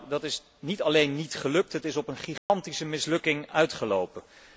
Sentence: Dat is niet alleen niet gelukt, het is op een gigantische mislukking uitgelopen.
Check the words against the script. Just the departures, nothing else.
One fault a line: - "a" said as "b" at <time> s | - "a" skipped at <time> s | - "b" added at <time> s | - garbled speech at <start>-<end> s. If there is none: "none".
none